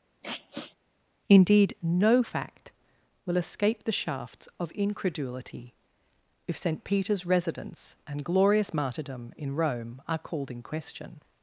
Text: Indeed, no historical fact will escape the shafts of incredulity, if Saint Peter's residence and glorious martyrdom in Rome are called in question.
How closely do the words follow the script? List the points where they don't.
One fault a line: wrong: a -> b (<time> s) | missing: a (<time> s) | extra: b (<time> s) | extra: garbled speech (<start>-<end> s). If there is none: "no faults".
missing: historical (2.2 s)